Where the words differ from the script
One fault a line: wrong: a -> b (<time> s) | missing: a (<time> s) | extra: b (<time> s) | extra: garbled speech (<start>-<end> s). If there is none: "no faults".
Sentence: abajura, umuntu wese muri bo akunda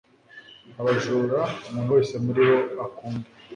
no faults